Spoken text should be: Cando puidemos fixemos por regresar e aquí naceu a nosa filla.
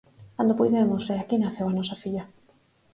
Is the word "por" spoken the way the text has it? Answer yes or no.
no